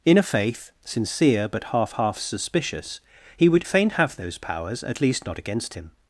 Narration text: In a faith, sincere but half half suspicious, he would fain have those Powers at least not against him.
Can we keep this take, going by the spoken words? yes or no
yes